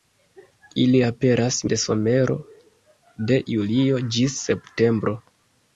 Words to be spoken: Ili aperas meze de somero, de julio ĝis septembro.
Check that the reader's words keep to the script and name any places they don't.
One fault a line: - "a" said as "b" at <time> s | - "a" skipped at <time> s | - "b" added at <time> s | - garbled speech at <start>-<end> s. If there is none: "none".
- "meze" skipped at 1.6 s